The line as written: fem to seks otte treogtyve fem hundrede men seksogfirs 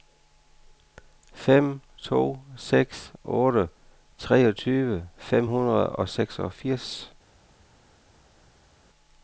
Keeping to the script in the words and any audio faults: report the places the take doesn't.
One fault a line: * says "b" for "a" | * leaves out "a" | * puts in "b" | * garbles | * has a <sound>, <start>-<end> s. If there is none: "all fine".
* says "og" for "men"